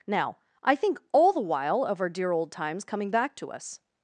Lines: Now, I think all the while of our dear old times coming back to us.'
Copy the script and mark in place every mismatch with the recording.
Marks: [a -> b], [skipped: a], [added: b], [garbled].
Now, I think all the while of our dear old times coming back to us.'